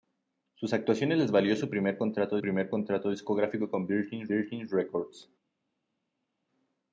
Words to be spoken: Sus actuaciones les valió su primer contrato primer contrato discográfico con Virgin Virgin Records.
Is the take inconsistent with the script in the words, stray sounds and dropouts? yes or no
no